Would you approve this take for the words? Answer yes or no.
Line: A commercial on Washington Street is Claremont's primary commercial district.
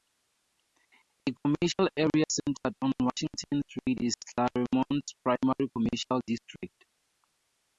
no